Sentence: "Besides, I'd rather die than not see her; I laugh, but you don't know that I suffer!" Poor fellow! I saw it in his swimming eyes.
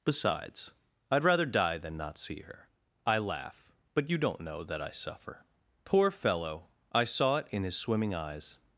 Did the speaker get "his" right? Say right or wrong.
right